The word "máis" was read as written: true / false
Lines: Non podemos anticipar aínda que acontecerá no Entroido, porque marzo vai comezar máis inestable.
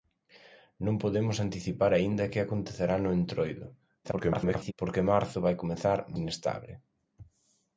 false